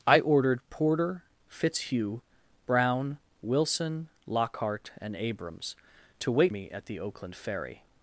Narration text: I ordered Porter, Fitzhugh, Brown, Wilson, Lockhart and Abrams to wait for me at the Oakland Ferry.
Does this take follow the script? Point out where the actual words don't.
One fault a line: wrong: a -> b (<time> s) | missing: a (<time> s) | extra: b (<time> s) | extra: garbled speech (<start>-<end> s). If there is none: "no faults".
missing: for (6.5 s)